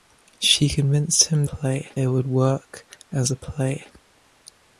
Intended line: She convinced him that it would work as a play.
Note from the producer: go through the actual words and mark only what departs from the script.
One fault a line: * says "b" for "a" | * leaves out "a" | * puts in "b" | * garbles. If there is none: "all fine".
* says "play" for "that"